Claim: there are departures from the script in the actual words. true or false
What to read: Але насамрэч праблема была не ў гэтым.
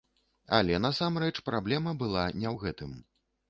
false